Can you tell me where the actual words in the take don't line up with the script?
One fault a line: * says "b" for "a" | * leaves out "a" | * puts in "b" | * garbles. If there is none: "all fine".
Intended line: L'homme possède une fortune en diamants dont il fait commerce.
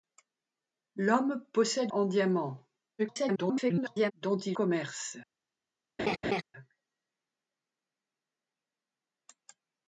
* leaves out "une fortune"
* garbles
* leaves out "fait"